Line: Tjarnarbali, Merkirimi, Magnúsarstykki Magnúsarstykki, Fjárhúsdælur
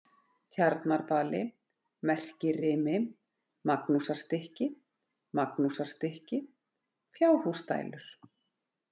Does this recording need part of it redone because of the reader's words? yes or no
no